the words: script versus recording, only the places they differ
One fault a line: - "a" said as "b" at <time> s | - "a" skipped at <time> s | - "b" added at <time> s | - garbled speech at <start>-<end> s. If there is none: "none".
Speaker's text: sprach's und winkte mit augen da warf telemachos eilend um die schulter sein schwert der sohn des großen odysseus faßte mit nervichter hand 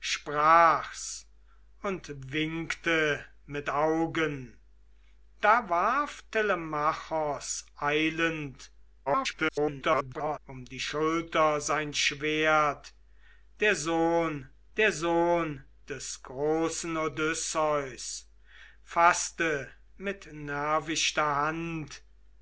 - garbled speech at 9.1-10.4 s
- "der sohn" added at 14.8 s